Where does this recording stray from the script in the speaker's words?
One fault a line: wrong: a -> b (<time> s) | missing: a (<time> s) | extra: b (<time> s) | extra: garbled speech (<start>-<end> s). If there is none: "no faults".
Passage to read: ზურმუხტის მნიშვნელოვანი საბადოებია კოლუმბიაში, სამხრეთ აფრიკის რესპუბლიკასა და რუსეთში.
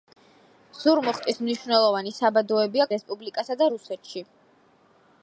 missing: კოლუმბიაში სამხრეთ აფრიკის (2.9 s)